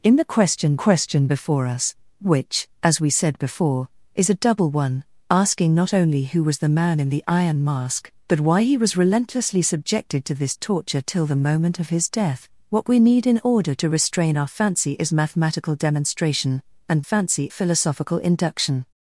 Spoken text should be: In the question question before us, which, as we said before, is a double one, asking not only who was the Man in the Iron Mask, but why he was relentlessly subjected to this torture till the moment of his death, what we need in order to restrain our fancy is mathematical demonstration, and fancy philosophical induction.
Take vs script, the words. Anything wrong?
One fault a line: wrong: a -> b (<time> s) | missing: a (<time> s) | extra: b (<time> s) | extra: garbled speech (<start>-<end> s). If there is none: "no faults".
no faults